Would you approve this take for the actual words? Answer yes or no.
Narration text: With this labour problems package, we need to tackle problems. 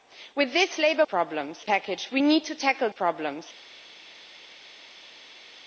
yes